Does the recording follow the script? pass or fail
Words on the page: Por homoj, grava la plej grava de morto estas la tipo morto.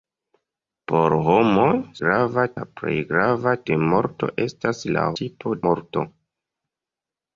pass